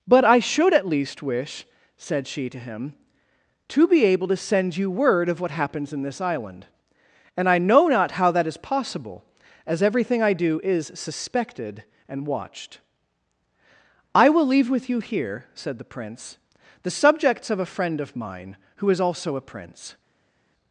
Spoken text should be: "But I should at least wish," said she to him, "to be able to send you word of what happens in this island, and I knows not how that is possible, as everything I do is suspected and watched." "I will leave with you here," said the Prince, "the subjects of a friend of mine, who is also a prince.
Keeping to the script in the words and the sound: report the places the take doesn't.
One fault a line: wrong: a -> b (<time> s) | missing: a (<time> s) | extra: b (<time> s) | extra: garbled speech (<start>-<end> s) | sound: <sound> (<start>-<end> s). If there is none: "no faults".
wrong: knows -> know (7.6 s)